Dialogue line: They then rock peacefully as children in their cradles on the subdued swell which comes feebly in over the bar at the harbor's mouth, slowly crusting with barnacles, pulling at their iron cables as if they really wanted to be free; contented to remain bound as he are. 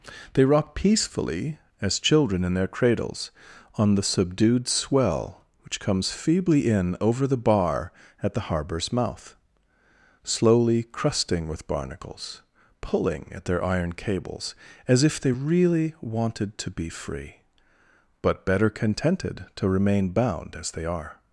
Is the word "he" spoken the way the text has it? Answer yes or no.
no